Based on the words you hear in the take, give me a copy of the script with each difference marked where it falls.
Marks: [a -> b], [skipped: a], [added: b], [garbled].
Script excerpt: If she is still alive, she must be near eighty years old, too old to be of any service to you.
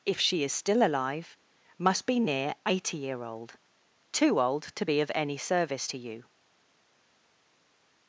If she is still alive, [skipped: she] must be near eighty [years -> year] old, too old to be of any service to you.